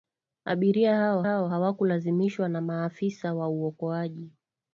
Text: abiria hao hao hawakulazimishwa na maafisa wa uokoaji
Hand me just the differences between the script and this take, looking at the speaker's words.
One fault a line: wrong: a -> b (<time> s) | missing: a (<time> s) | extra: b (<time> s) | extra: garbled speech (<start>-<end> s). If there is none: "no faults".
no faults